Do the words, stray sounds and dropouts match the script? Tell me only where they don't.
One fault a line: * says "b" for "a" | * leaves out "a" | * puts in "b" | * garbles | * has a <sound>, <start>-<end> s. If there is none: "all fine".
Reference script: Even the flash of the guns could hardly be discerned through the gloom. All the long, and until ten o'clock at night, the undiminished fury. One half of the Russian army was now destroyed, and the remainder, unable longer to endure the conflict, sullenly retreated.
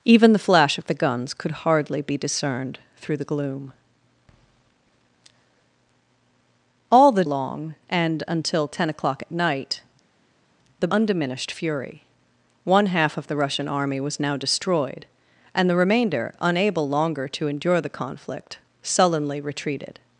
all fine